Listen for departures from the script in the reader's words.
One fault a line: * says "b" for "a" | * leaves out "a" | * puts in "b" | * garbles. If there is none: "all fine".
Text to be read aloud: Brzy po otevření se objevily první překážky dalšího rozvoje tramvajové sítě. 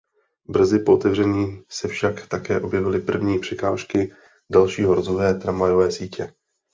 * puts in "však také"